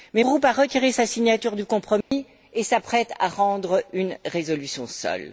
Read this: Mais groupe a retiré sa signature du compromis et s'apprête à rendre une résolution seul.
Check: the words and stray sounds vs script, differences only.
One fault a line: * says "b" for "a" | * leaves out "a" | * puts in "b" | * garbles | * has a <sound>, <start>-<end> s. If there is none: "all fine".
* has a dropout, 2.0-2.1 s